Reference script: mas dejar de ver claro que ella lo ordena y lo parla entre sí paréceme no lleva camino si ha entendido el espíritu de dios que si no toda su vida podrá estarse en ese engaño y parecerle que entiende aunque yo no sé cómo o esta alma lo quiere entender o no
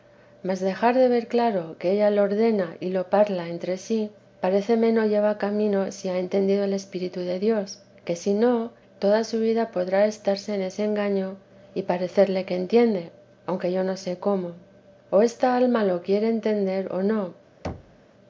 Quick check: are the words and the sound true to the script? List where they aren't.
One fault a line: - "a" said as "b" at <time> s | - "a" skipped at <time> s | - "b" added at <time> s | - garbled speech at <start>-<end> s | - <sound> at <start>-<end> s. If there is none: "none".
- thud at 17.6-18.0 s